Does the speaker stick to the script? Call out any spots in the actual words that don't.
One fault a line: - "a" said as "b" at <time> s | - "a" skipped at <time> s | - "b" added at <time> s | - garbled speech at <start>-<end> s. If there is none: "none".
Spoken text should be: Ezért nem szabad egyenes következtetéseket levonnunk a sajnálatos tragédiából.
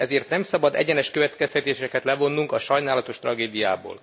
none